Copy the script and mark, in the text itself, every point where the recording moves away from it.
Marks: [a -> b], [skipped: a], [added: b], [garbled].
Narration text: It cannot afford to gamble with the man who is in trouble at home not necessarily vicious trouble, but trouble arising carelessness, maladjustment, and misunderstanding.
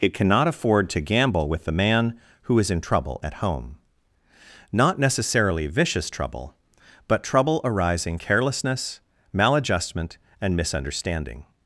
It cannot afford to gamble with the man who is in trouble at home not necessarily vicious trouble, but trouble arising carelessness, maladjustment, and misunderstanding.